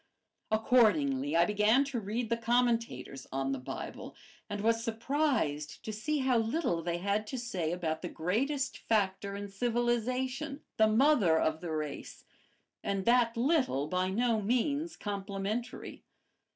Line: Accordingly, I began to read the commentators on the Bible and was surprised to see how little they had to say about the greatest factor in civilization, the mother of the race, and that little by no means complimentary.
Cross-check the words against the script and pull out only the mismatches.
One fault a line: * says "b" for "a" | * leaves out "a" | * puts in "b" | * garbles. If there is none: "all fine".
all fine